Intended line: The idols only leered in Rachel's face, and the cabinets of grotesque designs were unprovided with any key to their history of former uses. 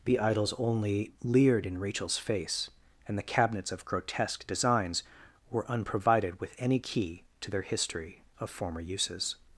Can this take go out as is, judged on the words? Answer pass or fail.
pass